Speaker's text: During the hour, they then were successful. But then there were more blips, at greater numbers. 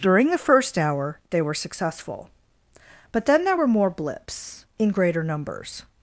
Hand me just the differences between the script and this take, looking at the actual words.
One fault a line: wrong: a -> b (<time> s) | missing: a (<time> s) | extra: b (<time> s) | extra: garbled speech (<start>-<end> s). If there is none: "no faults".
extra: first (0.4 s)
missing: then (1.4 s)
wrong: at -> in (4.8 s)